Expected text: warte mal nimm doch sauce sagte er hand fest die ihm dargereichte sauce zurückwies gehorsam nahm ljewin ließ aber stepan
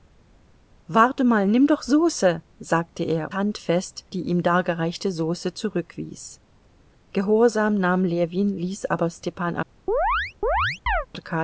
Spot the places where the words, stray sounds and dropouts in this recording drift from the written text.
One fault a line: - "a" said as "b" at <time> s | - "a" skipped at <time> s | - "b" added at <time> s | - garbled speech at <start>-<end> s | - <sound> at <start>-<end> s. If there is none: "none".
- chirp at 9.9-11.1 s